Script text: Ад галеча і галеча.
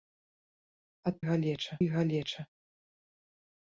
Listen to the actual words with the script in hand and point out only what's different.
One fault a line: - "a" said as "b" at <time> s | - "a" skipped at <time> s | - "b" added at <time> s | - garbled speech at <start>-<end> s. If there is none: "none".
none